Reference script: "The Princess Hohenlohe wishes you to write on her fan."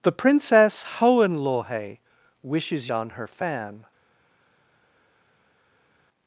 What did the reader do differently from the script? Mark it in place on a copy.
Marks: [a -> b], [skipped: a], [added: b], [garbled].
"The Princess Hohenlohe wishes [skipped: you to write] on her fan."